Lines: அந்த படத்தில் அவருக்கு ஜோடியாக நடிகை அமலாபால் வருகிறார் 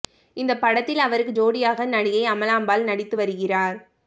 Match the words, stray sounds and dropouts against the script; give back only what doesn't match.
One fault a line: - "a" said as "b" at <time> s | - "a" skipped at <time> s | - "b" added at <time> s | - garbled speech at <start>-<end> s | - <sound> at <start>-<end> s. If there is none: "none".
- "அந்த" said as "இந்த" at 0.4 s
- "நடித்து" added at 2.9 s